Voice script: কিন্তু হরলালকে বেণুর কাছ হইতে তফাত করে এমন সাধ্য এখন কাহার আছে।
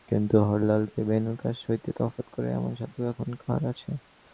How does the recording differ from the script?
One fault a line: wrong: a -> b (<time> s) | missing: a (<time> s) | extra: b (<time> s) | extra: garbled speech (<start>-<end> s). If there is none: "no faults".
no faults